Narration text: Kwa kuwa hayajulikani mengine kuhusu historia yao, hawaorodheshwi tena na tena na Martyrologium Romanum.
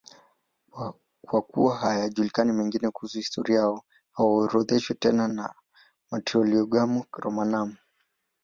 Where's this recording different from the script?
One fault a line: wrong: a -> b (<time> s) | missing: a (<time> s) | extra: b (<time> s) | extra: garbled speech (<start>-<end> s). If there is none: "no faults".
missing: tena na (5.5 s)